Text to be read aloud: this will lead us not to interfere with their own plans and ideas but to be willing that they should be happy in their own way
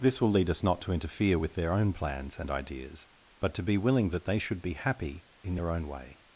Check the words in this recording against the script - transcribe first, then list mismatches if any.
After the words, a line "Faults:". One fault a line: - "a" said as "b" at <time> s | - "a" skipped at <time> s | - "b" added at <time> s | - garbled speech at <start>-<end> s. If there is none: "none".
this will lead us not to interfere with their own plans and ideas but to be willing that they should be happy in their own way
Faults:
none